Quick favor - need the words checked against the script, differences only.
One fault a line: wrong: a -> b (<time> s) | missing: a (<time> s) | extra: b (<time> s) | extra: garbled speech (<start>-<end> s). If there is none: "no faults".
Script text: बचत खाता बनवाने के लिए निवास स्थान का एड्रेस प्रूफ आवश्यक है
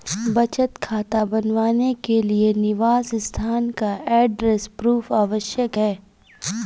no faults